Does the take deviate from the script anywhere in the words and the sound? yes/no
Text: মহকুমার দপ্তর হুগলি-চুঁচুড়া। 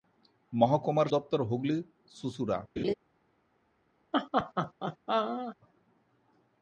yes